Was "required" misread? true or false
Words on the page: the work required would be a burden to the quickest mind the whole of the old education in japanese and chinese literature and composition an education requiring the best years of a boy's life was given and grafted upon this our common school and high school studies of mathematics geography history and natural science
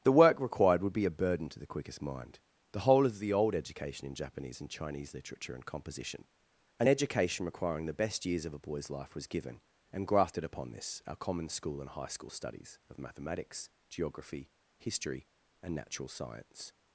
false